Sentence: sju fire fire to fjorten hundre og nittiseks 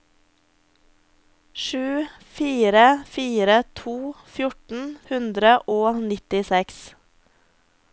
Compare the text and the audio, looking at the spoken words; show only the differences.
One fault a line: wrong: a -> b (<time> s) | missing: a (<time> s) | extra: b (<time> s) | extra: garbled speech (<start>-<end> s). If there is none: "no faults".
no faults